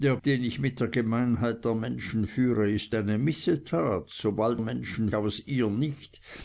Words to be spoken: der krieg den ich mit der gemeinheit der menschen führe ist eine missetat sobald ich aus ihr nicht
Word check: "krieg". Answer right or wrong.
wrong